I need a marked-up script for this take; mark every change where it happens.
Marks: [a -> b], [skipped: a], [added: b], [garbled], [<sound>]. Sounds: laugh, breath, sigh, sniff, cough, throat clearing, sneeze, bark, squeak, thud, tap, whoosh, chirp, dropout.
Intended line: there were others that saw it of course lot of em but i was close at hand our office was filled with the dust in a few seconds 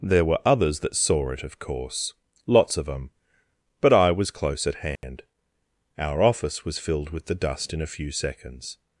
there were others that saw it of course [lot -> lots] of em but i was close at hand [dropout] our office was filled with the dust in a few seconds